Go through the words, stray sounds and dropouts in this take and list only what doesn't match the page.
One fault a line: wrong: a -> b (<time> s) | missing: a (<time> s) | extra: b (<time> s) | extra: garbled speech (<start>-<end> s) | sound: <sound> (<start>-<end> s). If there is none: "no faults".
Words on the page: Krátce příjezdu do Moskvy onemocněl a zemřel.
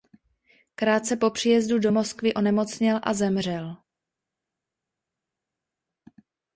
extra: po (1.1 s)